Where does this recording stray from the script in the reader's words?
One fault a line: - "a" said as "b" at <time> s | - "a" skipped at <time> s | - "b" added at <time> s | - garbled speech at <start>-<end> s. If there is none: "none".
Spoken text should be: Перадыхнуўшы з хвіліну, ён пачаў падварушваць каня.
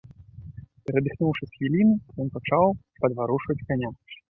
none